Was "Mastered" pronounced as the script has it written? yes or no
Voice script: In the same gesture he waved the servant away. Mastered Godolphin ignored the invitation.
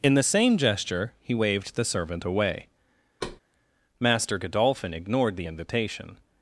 no